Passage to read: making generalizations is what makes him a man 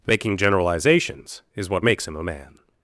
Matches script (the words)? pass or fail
pass